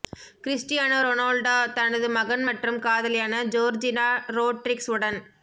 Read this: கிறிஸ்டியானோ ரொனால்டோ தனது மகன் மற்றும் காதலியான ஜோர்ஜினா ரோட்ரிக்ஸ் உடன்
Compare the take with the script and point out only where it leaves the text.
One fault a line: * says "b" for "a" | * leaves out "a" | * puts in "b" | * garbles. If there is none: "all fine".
all fine